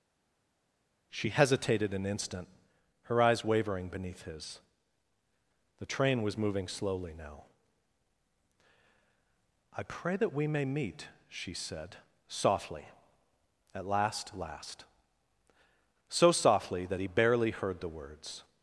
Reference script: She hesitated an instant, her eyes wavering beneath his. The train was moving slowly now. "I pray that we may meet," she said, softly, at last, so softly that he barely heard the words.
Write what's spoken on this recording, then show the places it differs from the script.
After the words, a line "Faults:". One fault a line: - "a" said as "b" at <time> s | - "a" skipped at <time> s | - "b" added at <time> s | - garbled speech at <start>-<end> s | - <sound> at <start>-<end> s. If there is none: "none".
She hesitated an instant, her eyes wavering beneath his. The train was moving slowly now. "I pray that we may meet," she said, softly, at last last, so softly that he barely heard the words.
Faults:
- "last" added at 14.3 s